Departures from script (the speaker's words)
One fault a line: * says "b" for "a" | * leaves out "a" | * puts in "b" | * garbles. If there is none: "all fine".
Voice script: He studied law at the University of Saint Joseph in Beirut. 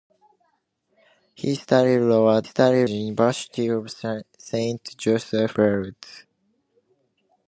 * says "studied" for "the"
* leaves out "in"